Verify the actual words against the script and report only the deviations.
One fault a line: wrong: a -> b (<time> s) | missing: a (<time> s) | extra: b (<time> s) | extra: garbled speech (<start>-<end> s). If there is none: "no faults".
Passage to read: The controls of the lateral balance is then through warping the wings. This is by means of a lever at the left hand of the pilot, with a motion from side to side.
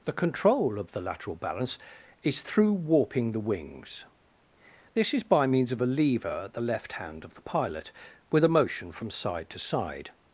wrong: controls -> control (0.1 s)
missing: then (2.4 s)